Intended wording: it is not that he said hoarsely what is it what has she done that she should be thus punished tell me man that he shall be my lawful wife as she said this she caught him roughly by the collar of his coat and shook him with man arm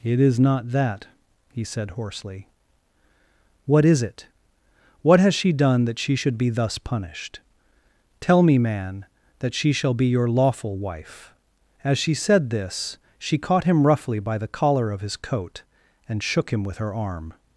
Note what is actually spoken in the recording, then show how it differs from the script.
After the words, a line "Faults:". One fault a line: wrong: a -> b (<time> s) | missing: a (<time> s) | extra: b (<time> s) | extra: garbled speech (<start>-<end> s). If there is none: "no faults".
it is not that he said hoarsely what is it what has she done that she should be thus punished tell me man that she shall be your lawful wife as she said this she caught him roughly by the collar of his coat and shook him with her arm
Faults:
wrong: he -> she (9.5 s)
wrong: my -> your (10.1 s)
wrong: man -> her (16.8 s)